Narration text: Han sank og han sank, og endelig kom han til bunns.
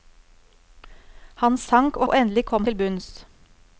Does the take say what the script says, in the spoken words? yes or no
no